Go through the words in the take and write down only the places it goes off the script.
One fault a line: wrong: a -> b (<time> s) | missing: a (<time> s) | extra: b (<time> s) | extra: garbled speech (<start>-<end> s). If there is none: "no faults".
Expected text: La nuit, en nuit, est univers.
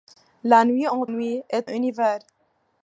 no faults